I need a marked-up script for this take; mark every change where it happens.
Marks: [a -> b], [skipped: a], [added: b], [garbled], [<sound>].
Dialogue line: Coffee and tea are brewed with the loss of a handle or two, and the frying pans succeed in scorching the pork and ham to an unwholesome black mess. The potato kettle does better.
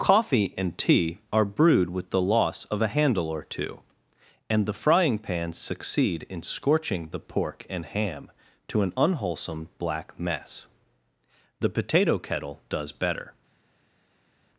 Coffee and tea are brewed with the loss of a handle or two, and the frying pans succeed in scorching the pork and ham to an unwholesome black mess. The potato kettle does better.